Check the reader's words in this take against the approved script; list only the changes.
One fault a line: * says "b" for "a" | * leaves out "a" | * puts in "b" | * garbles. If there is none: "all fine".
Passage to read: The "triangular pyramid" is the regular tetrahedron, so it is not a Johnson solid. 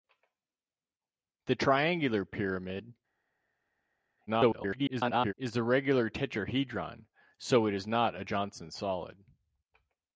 * garbles